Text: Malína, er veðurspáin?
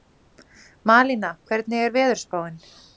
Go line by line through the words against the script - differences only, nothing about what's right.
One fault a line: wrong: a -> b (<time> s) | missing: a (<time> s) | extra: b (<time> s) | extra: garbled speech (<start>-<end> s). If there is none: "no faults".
extra: hvernig (1.5 s)